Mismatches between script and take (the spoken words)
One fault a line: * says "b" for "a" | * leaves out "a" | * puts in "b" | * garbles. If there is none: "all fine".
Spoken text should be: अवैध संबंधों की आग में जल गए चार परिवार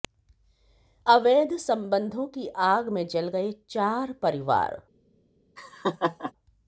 all fine